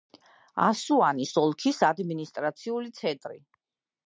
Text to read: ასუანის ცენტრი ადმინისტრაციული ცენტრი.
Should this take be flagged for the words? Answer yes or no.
yes